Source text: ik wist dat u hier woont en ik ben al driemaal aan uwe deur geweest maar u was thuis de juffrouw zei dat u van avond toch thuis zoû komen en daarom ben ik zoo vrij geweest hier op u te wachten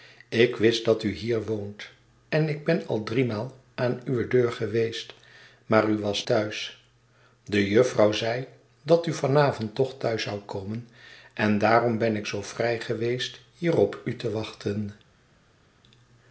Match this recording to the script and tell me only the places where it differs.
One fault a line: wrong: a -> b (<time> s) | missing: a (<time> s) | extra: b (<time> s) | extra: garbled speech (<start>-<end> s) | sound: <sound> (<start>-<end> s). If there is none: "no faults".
no faults